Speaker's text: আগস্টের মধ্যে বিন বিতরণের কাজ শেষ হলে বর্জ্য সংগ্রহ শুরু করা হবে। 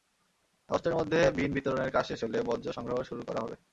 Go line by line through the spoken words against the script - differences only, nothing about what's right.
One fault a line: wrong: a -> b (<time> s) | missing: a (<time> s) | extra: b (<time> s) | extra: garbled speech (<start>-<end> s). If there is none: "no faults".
no faults